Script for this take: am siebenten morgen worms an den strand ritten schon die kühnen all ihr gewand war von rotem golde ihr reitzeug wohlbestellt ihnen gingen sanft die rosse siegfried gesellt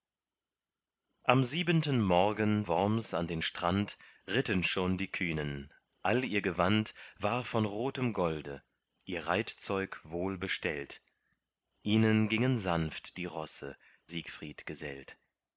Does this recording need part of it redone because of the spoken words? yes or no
no